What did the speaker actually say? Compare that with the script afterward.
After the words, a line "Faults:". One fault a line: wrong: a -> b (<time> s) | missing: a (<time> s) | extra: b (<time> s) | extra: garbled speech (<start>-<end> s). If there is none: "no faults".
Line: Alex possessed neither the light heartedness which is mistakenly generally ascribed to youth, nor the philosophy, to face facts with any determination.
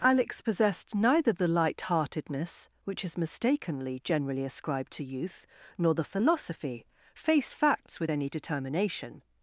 Alex possessed neither the light heartedness which is mistakenly generally ascribed to youth, nor the philosophy, face facts with any determination.
Faults:
missing: to (6.9 s)